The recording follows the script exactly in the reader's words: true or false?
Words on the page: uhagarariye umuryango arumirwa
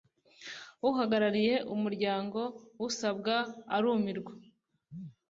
false